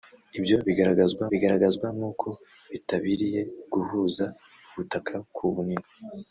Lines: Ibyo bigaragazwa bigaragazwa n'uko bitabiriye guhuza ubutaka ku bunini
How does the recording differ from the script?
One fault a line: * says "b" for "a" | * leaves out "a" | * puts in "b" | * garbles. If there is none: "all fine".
all fine